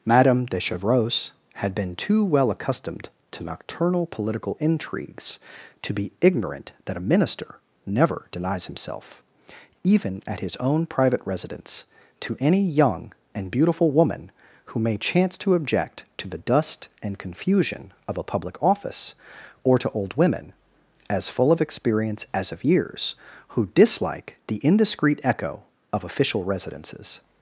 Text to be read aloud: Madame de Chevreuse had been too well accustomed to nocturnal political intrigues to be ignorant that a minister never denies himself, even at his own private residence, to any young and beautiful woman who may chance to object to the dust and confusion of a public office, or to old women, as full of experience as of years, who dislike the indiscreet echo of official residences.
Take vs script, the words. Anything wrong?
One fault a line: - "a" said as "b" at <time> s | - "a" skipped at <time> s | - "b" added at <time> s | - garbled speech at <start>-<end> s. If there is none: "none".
none